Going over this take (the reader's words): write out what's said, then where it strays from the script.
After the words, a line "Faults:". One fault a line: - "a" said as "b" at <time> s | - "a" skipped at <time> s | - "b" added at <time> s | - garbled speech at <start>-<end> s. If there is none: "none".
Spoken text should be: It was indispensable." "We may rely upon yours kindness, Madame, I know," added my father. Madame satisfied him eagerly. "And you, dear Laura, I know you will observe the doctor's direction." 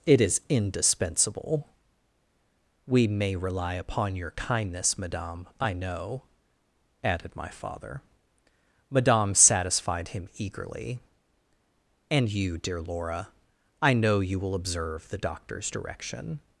It is indispensable." "We may rely upon your kindness, Madame, I know," added my father. Madame satisfied him eagerly. "And you, dear Laura, I know you will observe the doctor's direction."
Faults:
- "was" said as "is" at 0.2 s
- "yours" said as "your" at 4.2 s